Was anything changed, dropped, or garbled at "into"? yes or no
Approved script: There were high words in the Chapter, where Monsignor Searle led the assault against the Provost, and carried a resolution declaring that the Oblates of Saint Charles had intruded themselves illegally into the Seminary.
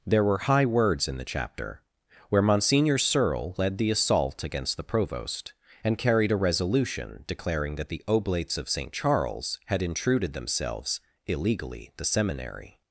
yes